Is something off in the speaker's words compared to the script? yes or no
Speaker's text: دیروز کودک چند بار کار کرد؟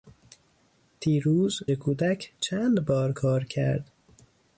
no